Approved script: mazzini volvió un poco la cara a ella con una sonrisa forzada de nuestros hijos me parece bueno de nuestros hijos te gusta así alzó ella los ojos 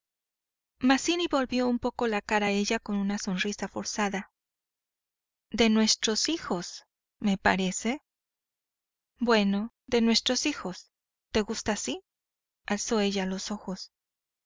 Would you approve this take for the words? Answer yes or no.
yes